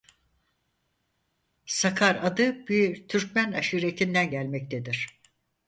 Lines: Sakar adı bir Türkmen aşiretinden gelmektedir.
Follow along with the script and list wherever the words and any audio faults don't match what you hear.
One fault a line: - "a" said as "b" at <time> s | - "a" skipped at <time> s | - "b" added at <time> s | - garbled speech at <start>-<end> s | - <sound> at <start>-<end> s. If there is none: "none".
none